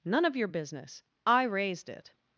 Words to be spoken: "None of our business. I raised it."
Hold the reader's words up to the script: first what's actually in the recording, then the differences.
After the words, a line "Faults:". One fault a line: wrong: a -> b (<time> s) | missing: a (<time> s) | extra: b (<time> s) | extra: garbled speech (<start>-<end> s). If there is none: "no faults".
"None of your business. I raised it."
Faults:
wrong: our -> your (0.3 s)